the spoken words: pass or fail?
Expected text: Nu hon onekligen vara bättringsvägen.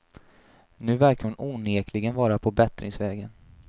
fail